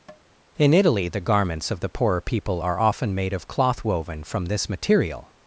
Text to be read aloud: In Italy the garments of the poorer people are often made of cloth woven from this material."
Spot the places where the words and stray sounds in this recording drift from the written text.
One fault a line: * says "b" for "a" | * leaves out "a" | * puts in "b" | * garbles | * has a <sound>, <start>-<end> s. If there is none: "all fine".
* has a tap, 0.1-0.2 s